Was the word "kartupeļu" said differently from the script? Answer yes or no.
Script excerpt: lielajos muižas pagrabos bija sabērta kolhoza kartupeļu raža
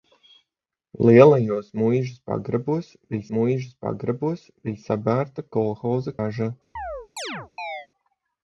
yes